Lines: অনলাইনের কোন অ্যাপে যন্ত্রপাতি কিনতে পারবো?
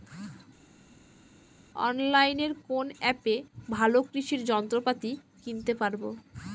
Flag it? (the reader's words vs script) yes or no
yes